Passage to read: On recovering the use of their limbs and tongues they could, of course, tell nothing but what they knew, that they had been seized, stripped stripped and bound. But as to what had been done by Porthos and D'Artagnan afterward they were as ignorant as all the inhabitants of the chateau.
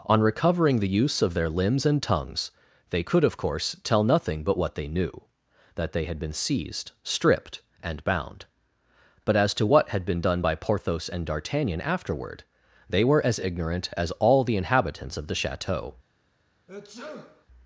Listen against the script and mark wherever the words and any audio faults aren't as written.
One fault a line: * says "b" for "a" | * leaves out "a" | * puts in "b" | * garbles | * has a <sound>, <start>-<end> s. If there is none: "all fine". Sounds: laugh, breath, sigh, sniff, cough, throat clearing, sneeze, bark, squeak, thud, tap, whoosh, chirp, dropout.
* leaves out "stripped"
* has a sneeze, 16.7-17.5 s